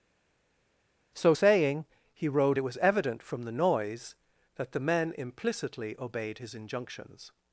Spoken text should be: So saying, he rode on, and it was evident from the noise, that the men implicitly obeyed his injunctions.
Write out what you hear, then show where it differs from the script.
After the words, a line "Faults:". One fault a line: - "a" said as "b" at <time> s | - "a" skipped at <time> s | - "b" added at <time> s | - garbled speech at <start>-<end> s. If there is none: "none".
So saying, he rode it was evident from the noise, that the men implicitly obeyed his injunctions.
Faults:
- "on and" skipped at 2.6 s